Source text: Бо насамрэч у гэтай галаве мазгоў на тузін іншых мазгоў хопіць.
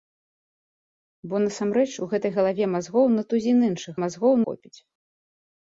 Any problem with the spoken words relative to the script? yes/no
no